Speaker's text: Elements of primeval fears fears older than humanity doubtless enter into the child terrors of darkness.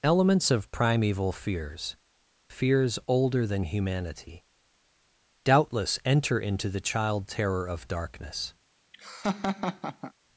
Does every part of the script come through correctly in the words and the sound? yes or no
no